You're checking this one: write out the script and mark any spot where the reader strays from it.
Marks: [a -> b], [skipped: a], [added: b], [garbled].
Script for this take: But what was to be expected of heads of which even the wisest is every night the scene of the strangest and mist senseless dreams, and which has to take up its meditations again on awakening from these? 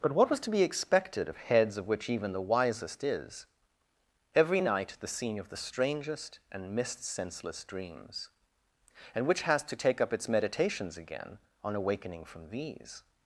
But what was to be expected of heads of which even the wisest is every night the scene of the strangest and mist senseless dreams, and which has to take up its meditations again on awakening from these?